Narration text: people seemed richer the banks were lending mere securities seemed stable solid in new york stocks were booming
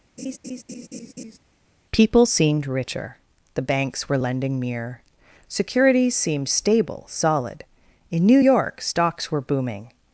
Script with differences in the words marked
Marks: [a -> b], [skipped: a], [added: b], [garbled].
people seemed richer the banks were lending mere securities seemed stable solid in new york stocks were booming